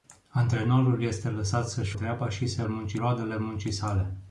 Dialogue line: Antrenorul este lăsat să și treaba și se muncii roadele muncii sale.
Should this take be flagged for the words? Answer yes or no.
no